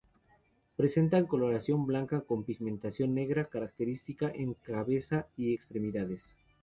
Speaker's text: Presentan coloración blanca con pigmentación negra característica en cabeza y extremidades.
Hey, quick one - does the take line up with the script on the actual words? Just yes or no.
yes